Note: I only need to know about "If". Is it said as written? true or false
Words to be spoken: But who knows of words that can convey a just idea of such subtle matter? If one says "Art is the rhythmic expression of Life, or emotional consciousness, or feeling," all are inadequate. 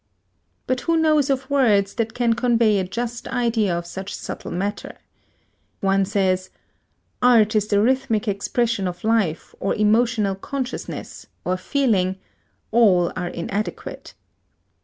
false